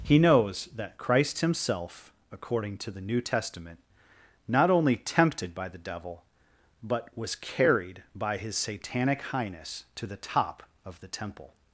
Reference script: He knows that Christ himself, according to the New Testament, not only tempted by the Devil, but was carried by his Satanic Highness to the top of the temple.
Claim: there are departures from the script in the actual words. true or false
false